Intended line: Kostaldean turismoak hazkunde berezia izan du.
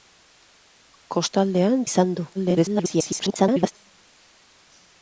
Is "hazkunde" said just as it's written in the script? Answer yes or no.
no